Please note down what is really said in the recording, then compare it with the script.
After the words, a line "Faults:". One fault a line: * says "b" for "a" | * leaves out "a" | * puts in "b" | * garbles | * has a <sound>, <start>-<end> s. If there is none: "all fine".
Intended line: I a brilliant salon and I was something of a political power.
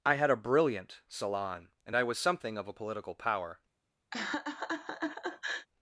I had a brilliant salon and I was something of a political power.
Faults:
* puts in "had"
* has a laugh, 4.1-5.7 s